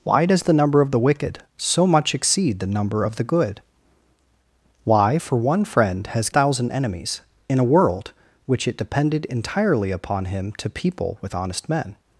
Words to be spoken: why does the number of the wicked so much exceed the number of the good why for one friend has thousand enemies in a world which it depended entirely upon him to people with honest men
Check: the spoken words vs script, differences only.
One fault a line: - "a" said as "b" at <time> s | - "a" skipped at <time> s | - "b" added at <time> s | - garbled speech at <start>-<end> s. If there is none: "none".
none